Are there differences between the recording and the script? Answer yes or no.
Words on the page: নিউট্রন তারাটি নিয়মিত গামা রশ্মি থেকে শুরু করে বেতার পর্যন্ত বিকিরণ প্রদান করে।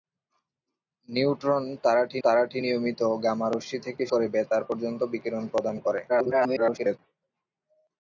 yes